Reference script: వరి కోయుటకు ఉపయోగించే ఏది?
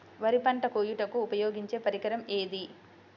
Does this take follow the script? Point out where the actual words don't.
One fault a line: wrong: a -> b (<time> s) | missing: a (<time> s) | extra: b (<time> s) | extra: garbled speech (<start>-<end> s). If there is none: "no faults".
extra: పంట (0.4 s)
extra: పరికరం (1.8 s)